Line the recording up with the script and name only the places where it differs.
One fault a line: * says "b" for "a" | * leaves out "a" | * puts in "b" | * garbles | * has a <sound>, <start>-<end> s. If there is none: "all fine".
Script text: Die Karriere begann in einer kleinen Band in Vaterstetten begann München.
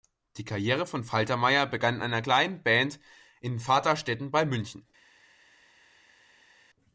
* puts in "von Faltermeyer"
* says "bei" for "begann"